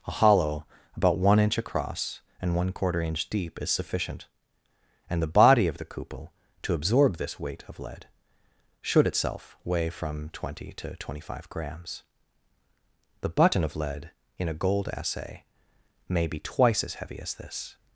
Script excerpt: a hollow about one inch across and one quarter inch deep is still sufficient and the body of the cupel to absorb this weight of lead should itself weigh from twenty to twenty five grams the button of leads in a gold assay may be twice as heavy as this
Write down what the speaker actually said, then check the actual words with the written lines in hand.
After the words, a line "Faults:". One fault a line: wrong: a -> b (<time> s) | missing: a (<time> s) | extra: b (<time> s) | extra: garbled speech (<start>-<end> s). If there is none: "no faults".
a hollow about one inch across and one quarter inch deep is sufficient and the body of the cupel to absorb this weight of lead should itself weigh from twenty to twenty five grams the button of lead in a gold assay may be twice as heavy as this
Faults:
missing: still (3.7 s)
wrong: leads -> lead (13.8 s)